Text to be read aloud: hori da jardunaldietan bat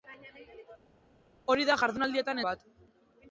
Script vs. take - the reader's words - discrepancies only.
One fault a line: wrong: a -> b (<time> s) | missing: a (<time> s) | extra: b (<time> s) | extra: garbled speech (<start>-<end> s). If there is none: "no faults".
no faults